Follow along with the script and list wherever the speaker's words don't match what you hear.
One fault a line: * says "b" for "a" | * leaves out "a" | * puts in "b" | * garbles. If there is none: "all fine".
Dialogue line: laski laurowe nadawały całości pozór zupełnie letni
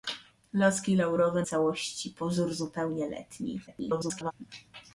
* leaves out "nadawały"
* garbles